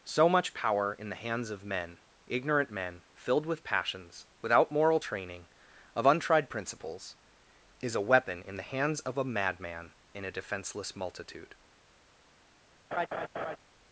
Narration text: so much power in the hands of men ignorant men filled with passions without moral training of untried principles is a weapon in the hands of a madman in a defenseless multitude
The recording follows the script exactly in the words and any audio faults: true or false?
false